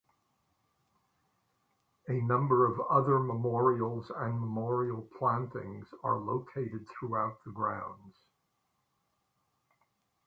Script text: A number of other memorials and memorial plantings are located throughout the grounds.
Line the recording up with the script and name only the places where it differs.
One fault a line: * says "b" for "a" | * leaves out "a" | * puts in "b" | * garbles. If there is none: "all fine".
all fine